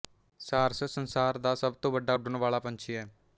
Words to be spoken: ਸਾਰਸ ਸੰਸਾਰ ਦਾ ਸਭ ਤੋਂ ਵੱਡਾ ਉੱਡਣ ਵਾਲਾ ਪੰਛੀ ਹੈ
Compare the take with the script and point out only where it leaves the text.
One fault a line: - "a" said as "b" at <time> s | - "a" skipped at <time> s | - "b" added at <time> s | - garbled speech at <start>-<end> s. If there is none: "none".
none